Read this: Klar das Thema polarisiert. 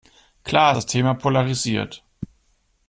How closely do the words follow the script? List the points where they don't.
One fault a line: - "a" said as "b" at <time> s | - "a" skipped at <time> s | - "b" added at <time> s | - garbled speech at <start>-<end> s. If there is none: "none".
none